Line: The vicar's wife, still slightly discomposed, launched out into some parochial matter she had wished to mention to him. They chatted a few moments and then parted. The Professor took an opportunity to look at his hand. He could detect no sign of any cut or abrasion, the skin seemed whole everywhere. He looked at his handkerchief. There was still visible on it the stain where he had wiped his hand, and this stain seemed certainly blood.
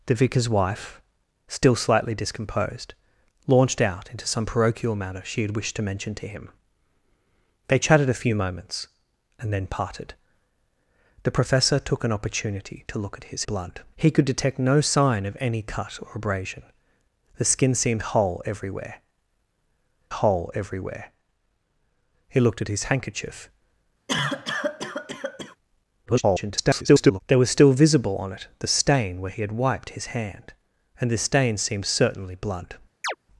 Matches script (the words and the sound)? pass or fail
fail